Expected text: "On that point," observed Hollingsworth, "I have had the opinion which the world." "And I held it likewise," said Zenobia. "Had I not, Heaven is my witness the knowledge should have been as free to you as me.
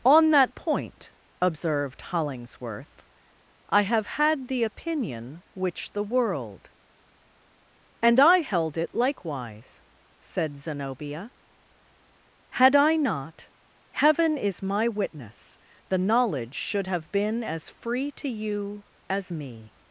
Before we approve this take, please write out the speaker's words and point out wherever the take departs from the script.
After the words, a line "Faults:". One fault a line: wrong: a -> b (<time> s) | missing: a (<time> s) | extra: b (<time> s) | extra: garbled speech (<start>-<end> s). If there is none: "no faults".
"On that point," observed Hollingsworth, "I have had the opinion which the world." "And I held it likewise," said Zenobia. "Had I not, Heaven is my witness the knowledge should have been as free to you as me.
Faults:
no faults